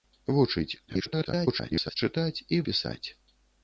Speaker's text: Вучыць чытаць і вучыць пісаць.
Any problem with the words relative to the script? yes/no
yes